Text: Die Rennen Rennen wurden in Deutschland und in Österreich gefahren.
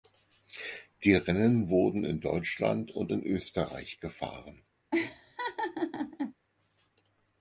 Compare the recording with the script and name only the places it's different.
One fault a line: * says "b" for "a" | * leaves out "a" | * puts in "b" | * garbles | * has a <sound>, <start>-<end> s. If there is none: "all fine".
* leaves out "Rennen"
* has a laugh, 4.9-6.3 s